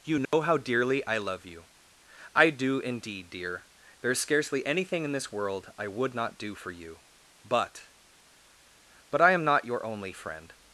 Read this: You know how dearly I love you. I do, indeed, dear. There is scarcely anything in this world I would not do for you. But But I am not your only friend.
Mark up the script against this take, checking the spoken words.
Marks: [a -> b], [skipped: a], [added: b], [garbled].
You know how dearly I love you. I do, indeed, dear. There is scarcely anything in this world I would not do for you. But But I am not your only friend.